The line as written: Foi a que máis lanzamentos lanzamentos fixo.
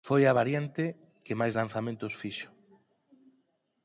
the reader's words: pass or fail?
fail